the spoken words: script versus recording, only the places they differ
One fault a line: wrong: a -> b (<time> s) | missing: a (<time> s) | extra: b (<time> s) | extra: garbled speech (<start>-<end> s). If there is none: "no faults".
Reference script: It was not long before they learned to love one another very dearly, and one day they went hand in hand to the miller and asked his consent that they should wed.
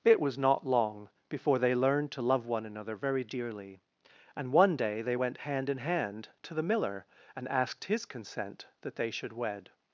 no faults